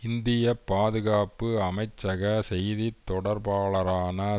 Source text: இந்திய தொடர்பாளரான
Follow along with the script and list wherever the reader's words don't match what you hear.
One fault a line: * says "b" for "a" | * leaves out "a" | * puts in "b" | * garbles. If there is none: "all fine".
* puts in "பாதுகாப்பு அமைச்சக செய்தி"